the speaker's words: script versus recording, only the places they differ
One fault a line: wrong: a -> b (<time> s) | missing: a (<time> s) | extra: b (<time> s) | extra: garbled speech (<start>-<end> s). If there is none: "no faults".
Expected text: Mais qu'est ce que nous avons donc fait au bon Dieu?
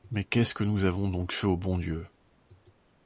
no faults